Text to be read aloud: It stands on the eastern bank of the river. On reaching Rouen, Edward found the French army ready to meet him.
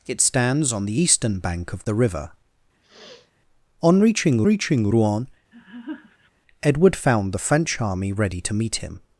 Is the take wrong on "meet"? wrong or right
right